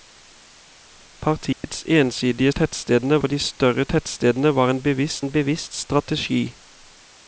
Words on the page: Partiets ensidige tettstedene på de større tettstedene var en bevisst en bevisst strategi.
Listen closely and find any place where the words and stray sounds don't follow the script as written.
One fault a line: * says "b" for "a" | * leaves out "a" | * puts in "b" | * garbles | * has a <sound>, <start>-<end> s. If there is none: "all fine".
* has a dropout, 1.5-1.6 s